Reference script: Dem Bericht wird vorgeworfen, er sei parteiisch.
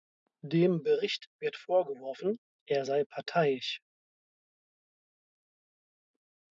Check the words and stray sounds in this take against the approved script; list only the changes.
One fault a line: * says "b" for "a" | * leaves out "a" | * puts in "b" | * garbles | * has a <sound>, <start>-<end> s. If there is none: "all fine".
all fine